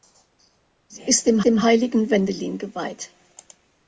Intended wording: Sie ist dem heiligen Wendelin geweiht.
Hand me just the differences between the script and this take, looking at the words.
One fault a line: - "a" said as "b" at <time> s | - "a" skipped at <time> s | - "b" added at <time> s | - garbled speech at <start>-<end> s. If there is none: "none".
- "dem" added at 1.5 s